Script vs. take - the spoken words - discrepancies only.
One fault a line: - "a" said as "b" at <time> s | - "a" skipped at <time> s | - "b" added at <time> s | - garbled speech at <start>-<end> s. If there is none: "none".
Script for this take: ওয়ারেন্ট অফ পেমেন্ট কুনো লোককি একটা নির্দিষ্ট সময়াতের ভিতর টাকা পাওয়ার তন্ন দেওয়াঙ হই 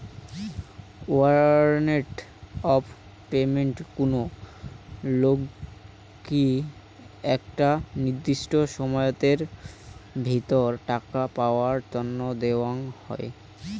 none